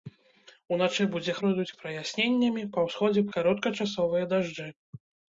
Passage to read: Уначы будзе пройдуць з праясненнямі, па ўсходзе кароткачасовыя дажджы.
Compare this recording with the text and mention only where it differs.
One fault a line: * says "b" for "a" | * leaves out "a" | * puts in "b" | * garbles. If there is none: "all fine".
all fine